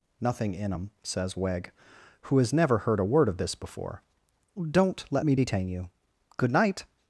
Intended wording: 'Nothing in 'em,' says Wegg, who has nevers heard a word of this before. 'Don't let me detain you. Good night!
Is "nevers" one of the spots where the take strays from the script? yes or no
yes